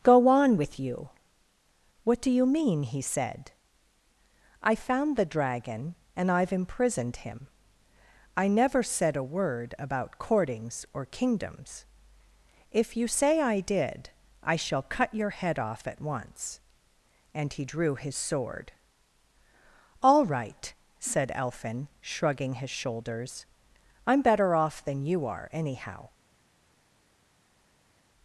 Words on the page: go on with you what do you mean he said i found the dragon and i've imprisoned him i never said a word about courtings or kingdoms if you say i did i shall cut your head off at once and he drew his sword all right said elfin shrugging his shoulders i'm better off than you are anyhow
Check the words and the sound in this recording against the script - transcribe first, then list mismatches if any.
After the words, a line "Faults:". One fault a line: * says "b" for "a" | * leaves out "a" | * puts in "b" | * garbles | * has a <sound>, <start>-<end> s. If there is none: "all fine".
go on with you what do you mean he said i found the dragon and i've imprisoned him i never said a word about courtings or kingdoms if you say i did i shall cut your head off at once and he drew his sword all right said elfin shrugging his shoulders i'm better off than you are anyhow
Faults:
all fine